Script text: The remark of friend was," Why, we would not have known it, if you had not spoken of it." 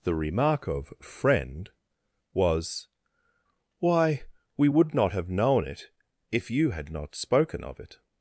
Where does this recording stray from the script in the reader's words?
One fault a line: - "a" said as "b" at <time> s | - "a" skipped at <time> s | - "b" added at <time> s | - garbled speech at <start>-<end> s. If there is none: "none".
none